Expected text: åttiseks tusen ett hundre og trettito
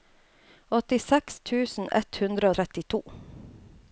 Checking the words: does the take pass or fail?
pass